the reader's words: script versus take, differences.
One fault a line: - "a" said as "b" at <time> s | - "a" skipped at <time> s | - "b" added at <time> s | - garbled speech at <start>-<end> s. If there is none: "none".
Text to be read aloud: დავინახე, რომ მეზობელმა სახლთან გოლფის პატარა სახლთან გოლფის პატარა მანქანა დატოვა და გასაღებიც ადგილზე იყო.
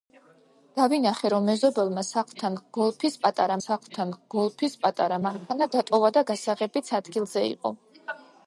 none